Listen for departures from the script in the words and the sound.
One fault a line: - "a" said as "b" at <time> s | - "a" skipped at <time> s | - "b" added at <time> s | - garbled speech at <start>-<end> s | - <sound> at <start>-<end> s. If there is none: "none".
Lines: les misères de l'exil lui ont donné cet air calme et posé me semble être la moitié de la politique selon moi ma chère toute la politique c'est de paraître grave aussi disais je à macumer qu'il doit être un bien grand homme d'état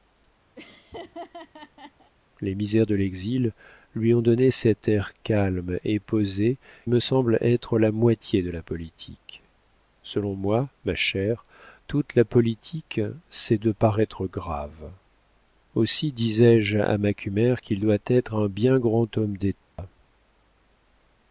- laugh at 0.6-2.1 s
- dropout at 19.6-19.8 s